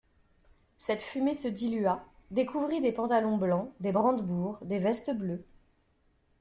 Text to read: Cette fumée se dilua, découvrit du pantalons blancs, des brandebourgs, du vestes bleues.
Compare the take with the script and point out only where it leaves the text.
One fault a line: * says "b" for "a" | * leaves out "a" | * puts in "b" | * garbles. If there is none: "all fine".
* says "des" for "du"
* says "des" for "du"